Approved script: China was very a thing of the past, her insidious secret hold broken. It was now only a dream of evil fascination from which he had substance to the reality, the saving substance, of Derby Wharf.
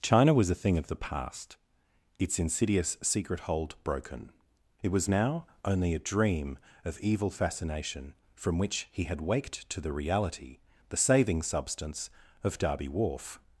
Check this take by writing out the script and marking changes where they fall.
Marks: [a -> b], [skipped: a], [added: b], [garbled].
China was [skipped: very] a thing of the past, [her -> its] insidious secret hold broken. It was now only a dream of evil fascination from which he had [substance -> waked] to the reality, the saving substance, of Derby Wharf.